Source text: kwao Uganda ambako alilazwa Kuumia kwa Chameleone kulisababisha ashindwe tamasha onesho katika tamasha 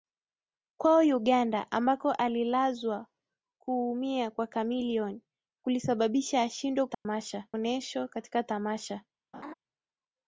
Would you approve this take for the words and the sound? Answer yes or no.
no